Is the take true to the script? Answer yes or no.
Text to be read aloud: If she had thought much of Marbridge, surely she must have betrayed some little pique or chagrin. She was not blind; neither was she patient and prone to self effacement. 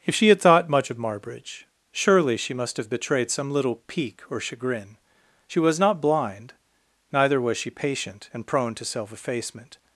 yes